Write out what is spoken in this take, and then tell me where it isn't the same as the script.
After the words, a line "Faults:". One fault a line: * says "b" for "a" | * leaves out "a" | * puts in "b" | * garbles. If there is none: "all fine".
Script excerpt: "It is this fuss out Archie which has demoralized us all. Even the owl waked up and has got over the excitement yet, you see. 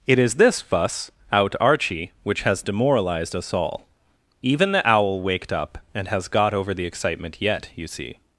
"It is this fuss out Archie which has demoralized us all. Even the owl waked up and has got over the excitement yet, you see.
Faults:
all fine